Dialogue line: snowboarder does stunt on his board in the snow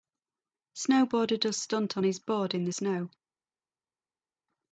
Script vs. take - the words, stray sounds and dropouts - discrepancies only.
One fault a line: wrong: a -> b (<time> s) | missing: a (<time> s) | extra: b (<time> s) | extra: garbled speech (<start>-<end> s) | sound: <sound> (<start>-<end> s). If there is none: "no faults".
no faults